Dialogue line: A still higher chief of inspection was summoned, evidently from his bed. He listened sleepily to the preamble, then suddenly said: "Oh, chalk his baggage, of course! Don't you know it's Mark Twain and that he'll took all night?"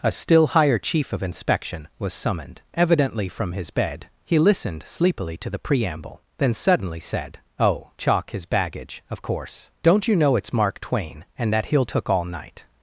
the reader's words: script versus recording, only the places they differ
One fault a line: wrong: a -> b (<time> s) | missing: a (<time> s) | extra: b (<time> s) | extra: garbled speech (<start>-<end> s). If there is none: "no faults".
no faults